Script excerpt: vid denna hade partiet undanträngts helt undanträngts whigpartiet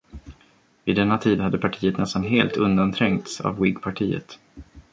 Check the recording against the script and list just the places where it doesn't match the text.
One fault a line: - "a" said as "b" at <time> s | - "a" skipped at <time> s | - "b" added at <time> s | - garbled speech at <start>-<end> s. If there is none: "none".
- "tid" added at 1.2 s
- "undanträngts" said as "nästan" at 2.0 s
- "av" added at 3.4 s